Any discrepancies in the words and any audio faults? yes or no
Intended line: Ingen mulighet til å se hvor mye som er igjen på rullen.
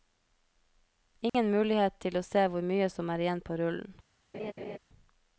yes